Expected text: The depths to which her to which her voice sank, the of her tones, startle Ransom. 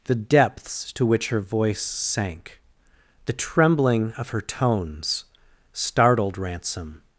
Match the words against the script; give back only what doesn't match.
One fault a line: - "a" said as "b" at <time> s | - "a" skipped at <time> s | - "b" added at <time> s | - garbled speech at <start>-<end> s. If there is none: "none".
- "to which her" skipped at 1.4 s
- "trembling" added at 3.3 s
- "startle" said as "startled" at 5.7 s